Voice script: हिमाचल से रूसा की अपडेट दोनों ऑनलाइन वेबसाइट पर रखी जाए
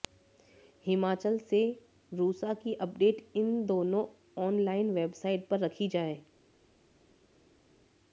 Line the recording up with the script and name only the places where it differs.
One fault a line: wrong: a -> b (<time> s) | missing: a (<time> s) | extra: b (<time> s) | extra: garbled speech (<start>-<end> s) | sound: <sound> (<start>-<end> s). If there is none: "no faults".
extra: इन (3.4 s)